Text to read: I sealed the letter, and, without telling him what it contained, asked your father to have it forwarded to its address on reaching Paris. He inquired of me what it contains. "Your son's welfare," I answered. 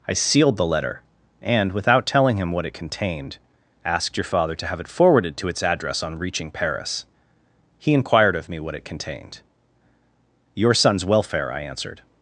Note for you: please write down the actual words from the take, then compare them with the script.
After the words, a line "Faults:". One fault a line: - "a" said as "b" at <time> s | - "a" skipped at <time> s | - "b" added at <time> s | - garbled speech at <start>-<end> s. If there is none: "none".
I sealed the letter, and, without telling him what it contained, asked your father to have it forwarded to its address on reaching Paris. He inquired of me what it contained. "Your son's welfare," I answered.
Faults:
- "contains" said as "contained" at 8.9 s